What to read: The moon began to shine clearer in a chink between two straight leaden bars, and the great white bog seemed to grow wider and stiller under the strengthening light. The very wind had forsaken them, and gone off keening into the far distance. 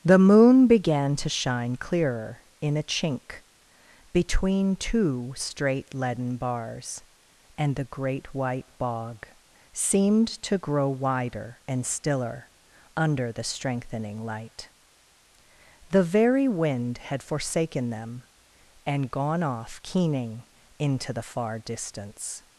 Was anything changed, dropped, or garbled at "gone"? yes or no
no